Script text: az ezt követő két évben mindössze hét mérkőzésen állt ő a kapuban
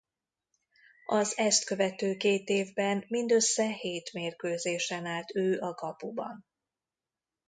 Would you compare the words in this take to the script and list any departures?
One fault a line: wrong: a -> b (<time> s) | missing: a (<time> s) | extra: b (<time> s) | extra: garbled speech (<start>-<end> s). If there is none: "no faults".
no faults